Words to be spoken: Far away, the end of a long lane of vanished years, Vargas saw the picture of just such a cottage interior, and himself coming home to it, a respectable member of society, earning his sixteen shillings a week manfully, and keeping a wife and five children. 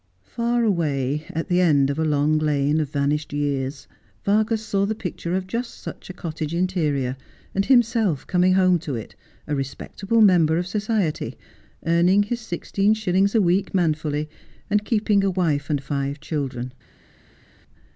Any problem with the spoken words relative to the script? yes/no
yes